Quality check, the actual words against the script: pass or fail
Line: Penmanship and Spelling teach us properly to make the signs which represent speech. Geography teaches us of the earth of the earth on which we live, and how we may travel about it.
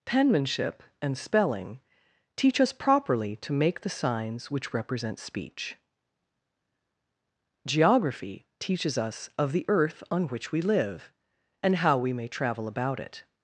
fail